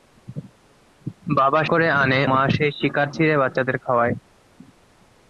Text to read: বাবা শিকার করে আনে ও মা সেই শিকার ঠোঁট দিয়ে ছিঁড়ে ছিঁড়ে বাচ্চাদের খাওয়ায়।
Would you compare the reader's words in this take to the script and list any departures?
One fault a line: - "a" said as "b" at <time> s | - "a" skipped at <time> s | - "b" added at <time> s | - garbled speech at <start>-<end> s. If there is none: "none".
- "শিকার" skipped at 1.6 s
- "ও" skipped at 2.2 s
- "ঠোঁট দিয়ে ছিঁড়ে" skipped at 3.1 s